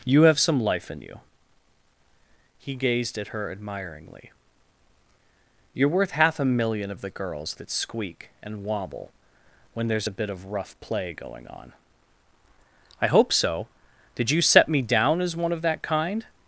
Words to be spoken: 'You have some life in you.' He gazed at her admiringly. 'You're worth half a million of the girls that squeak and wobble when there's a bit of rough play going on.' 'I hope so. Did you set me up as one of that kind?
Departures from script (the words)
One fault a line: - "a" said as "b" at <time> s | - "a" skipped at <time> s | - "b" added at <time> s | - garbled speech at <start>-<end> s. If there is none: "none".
- "up" said as "down" at 14.8 s